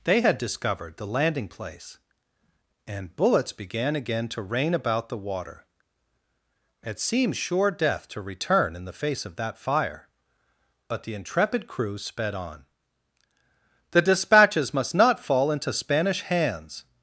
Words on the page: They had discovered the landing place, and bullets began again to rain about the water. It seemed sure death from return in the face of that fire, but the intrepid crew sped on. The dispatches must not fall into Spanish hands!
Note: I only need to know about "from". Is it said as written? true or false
false